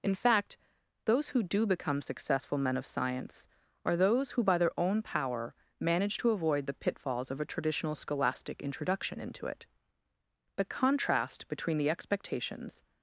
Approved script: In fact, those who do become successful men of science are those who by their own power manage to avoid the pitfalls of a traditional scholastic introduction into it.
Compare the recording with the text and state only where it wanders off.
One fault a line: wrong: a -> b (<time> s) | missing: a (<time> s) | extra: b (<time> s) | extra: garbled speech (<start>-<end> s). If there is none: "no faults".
extra: The contrast between the expectations (10.6 s)